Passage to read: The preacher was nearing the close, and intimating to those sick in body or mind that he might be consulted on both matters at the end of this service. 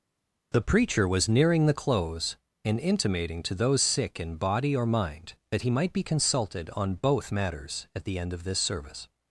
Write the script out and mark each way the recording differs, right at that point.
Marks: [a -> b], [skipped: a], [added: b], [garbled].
The preacher was nearing the close, and intimating to those sick in body or mind that he might be consulted on both matters at the end of this service.